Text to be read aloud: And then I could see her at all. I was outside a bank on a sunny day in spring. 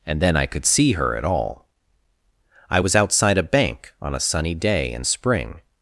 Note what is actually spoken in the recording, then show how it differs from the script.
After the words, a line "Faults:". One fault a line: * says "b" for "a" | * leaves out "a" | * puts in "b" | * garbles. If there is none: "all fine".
And then I could see her at all. I was outside a bank on a sunny day in spring.
Faults:
all fine